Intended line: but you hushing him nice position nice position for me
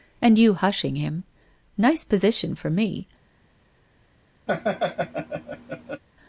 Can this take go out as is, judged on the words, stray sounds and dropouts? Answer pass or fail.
fail